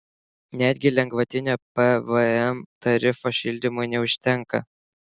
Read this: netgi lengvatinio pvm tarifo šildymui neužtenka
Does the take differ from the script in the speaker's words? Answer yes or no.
no